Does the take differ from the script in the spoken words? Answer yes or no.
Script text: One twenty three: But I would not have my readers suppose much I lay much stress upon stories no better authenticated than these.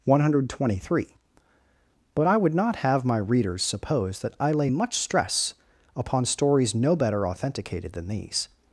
yes